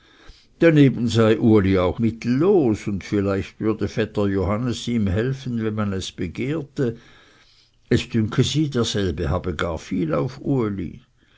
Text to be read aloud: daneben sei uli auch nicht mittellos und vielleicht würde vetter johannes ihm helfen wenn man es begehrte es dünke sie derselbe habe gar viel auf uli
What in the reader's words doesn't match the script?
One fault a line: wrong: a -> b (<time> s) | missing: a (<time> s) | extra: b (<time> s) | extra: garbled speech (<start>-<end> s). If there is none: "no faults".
missing: nicht (2.0 s)